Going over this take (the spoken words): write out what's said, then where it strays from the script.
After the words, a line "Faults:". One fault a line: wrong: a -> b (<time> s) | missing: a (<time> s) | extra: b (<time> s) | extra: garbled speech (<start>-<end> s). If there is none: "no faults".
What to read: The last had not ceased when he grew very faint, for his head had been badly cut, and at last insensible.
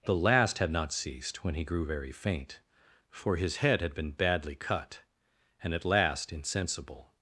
The last had not ceased when he grew very faint, for his head had been badly cut, and at last insensible.
Faults:
no faults